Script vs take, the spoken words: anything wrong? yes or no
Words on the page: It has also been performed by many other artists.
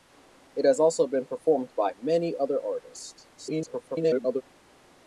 yes